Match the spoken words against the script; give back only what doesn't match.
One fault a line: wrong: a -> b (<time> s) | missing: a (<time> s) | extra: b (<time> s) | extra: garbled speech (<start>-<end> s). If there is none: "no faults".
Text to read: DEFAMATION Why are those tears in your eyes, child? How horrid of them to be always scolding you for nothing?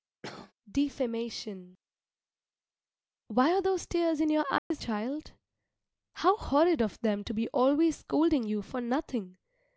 no faults